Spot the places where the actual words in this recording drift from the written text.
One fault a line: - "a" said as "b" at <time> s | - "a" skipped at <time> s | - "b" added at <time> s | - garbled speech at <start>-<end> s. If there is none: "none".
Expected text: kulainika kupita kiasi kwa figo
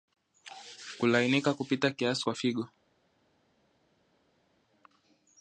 none